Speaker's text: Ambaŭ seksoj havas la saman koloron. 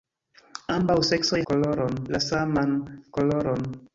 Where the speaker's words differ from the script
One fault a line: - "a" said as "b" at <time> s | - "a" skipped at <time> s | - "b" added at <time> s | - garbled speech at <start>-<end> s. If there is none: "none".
- "havas" said as "koloron" at 1.5 s